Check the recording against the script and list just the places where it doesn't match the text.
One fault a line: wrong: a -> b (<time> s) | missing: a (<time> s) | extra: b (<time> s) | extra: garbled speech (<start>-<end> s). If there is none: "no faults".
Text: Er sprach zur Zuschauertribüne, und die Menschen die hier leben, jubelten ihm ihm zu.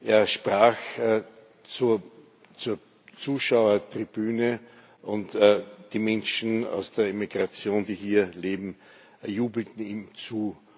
extra: aus der Emigration (6.6 s)
missing: ihm (10.1 s)